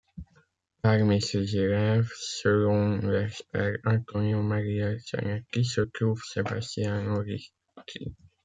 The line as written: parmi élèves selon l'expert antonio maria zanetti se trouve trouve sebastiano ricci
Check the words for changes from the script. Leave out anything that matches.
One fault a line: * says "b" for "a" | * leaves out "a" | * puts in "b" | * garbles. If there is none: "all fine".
* puts in "ses"
* leaves out "trouve"